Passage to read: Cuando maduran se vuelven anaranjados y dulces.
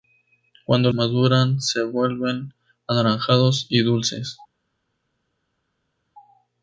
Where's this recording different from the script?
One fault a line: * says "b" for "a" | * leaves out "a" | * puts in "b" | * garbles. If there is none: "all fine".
all fine